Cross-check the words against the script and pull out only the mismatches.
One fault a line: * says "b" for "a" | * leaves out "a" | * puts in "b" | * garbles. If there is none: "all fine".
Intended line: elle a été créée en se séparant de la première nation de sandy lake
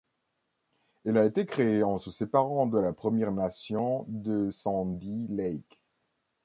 all fine